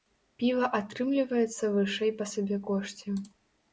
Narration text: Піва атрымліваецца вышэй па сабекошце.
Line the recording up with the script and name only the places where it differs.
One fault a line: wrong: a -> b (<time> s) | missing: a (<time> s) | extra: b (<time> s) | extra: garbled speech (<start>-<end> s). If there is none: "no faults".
no faults